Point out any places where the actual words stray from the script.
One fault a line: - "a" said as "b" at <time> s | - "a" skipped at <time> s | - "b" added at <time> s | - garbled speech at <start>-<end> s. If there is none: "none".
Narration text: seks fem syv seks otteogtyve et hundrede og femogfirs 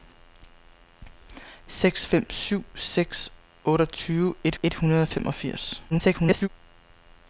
- "et" added at 4.6 s
- garbled speech at 5.9-6.5 s